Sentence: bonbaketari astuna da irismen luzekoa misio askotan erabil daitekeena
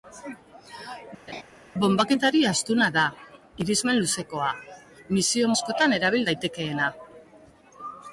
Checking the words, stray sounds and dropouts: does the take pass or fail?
fail